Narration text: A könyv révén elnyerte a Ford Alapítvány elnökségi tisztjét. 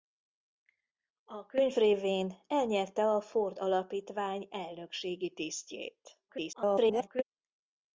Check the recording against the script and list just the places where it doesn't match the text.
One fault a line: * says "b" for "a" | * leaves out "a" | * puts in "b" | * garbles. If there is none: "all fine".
* garbles